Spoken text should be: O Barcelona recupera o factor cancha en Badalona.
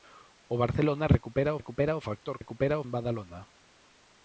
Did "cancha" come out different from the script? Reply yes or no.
yes